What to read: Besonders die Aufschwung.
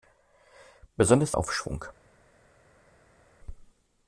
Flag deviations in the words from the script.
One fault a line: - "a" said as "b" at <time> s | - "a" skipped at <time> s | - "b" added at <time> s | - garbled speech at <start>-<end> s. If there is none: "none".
none